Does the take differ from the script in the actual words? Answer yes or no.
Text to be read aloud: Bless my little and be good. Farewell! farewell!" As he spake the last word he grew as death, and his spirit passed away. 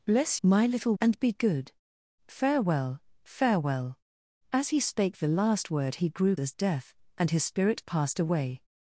no